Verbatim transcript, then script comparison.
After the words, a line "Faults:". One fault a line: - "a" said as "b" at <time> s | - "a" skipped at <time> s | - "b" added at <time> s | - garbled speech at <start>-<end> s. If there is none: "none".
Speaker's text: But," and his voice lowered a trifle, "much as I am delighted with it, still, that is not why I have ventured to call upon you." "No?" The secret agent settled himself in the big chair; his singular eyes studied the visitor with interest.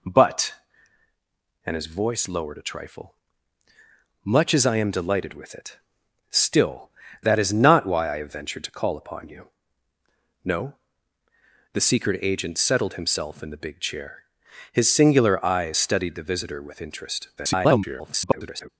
But," and his voice lowered a trifle, "much as I am delighted with it, still, that is not why I have ventured to call upon you." "No?" The secret agent settled himself in the big chair; his singular eyes studied the visitor with interest. [garbled]
Faults:
- garbled speech at 17.4-18.7 s